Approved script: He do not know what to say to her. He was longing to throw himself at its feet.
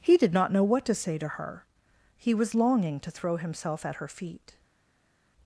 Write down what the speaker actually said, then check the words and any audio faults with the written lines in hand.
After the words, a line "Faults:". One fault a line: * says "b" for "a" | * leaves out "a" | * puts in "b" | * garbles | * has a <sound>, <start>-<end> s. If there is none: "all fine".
He did not know what to say to her. He was longing to throw himself at her feet.
Faults:
* says "did" for "do"
* says "her" for "its"